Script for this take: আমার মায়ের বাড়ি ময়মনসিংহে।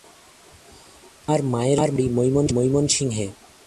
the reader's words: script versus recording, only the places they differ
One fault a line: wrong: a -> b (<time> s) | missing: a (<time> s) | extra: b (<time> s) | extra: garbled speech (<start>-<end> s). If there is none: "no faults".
no faults